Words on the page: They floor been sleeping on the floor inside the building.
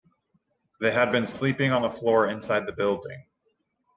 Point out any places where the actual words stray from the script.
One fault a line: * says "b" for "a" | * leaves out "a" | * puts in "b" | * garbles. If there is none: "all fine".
* says "had" for "floor"